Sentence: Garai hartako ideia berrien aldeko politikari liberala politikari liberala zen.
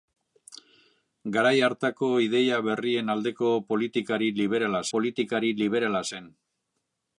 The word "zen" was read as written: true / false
true